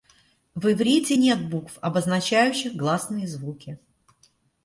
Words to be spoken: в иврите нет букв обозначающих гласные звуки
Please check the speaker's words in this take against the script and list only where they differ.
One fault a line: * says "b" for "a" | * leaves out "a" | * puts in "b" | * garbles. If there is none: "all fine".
all fine